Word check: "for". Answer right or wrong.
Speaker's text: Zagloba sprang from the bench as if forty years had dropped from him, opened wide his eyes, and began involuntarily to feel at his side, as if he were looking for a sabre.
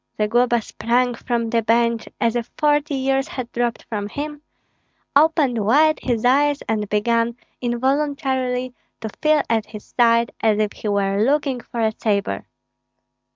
right